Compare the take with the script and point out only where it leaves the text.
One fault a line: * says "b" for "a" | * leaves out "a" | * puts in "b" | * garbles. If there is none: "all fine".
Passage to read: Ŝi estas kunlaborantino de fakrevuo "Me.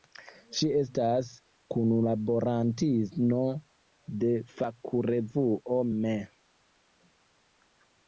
all fine